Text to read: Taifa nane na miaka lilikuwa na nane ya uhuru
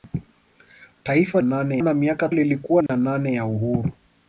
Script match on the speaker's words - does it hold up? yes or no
yes